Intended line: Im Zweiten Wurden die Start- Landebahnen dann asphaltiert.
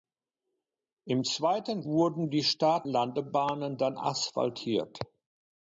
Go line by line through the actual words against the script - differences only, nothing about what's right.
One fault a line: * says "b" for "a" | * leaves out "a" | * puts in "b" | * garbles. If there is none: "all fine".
all fine